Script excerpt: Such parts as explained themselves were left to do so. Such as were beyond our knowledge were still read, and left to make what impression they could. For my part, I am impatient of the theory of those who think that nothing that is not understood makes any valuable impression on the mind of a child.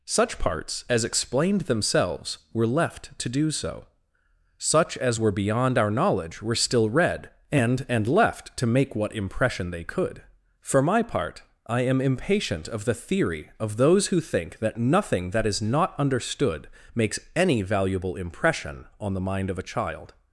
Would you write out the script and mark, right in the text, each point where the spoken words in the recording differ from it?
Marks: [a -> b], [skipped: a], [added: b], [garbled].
Such parts as explained themselves were left to do so. Such as were beyond our knowledge were still read, and [added: and] left to make what impression they could. For my part, I am impatient of the theory of those who think that nothing that is not understood makes any valuable impression on the mind of a child.